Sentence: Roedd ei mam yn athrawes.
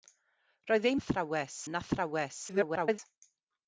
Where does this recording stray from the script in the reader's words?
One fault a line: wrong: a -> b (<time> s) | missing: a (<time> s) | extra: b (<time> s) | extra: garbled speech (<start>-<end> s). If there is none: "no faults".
wrong: mam -> athrawes (1.0 s)
extra: garbled speech (2.5-3.0 s)